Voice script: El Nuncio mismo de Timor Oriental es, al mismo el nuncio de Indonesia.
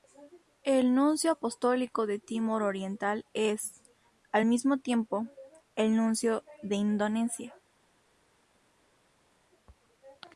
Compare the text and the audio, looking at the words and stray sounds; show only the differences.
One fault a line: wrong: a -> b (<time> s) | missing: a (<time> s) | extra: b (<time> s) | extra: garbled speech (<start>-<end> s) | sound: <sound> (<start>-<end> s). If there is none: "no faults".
wrong: mismo -> apostólico (1.3 s)
extra: tiempo (4.8 s)